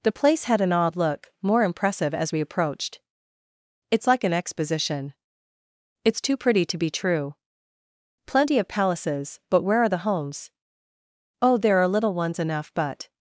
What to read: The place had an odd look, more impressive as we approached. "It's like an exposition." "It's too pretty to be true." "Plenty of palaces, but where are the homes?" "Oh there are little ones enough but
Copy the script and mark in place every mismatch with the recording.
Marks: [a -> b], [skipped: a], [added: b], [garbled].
The place had an odd look, more impressive as we approached. "It's like an exposition." "It's too pretty to be true." "Plenty of palaces, but where are the homes?" "Oh there are little ones enough but